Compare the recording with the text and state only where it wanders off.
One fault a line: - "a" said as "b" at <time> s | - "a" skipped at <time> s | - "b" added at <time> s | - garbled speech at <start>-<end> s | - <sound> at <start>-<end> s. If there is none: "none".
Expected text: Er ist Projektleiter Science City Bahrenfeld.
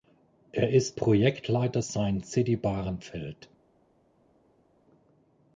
none